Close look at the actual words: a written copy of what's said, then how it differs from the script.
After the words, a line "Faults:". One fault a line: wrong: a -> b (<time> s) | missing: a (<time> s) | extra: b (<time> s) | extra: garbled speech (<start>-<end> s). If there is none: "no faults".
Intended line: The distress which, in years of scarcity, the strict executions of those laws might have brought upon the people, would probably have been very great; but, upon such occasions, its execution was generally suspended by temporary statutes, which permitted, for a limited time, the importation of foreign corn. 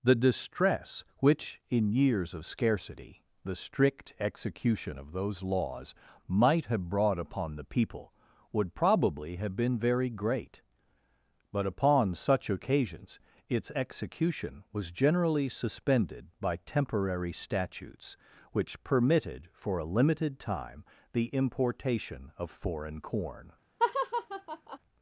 The distress which, in years of scarcity, the strict execution of those laws might have brought upon the people, would probably have been very great; but, upon such occasions, its execution was generally suspended by temporary statutes, which permitted, for a limited time, the importation of foreign corn.
Faults:
wrong: executions -> execution (4.2 s)